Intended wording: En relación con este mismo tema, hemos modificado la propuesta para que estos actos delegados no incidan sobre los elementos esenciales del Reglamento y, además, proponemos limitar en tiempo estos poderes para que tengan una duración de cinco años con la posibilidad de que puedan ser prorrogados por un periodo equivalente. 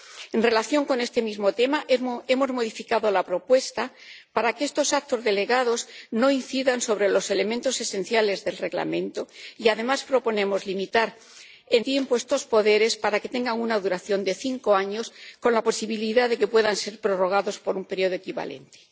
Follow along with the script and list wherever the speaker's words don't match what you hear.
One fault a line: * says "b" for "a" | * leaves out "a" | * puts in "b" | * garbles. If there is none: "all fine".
all fine